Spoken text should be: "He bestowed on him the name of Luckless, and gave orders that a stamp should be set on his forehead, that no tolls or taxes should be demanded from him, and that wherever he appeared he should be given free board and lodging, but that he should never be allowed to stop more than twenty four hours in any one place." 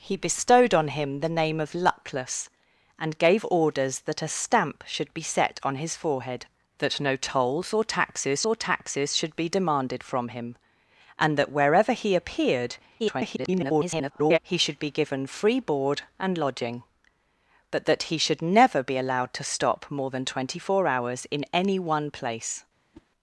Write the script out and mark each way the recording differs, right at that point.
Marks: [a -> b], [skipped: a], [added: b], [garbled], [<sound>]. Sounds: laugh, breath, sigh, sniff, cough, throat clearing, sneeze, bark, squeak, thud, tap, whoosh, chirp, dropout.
"He bestowed on him the name of Luckless, and gave orders that a stamp should be set on his forehead, that no tolls or taxes [added: or taxes] should be demanded from him, and that wherever he appeared [garbled] he should be given free board and lodging, but that he should never be allowed to stop more than twenty four hours in any one place." [whoosh]